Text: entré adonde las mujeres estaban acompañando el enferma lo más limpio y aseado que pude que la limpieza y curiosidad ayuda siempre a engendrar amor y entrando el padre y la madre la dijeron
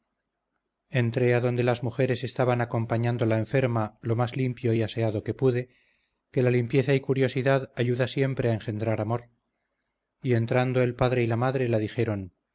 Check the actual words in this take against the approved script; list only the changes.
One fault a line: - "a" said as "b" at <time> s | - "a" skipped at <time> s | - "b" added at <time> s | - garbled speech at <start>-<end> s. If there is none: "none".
- "el" said as "la" at 3.3 s